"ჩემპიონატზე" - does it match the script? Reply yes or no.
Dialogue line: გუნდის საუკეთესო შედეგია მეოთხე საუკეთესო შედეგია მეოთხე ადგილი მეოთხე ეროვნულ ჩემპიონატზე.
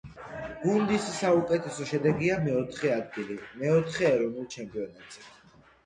yes